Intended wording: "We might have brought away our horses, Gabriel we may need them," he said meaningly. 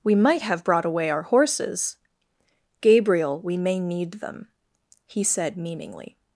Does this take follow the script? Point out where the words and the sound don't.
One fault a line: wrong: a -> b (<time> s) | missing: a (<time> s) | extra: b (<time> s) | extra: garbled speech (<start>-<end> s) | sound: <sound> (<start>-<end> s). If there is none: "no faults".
no faults